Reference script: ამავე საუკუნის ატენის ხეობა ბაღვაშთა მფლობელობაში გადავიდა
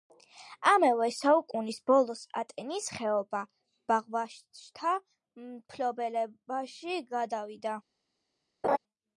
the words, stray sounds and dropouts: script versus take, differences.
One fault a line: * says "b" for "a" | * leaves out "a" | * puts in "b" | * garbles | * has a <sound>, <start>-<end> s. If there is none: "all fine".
* puts in "ბოლოს"
* has a laugh, 8.6-8.8 s